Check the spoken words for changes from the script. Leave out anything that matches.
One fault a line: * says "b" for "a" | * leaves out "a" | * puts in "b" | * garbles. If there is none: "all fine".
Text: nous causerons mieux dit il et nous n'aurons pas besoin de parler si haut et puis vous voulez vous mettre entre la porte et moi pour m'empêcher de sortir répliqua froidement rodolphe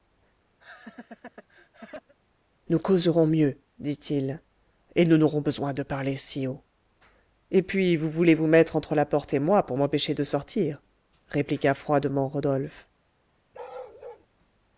* leaves out "pas"